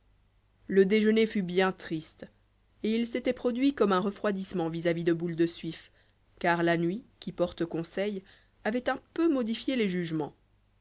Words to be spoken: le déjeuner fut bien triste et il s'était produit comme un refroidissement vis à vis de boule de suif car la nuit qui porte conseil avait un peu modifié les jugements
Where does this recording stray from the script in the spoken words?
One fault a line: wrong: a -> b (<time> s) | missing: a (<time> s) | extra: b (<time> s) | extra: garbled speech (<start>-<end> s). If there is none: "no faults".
no faults